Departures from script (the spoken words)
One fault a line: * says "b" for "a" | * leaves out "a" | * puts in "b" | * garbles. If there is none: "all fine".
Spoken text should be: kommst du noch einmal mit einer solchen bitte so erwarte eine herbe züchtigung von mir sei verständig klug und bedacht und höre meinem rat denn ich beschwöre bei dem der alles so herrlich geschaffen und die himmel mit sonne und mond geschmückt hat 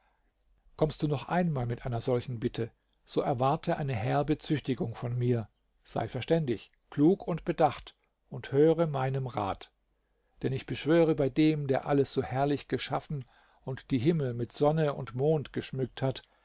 all fine